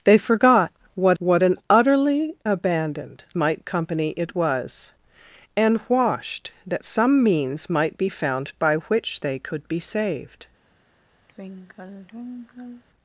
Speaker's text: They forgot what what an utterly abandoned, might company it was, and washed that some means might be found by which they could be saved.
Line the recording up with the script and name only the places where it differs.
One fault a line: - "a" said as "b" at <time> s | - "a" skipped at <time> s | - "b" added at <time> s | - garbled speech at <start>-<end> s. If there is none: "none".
none